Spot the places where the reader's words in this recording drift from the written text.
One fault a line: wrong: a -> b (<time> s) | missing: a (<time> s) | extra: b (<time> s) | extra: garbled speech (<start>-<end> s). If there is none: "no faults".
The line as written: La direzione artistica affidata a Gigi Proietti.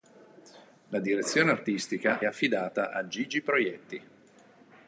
no faults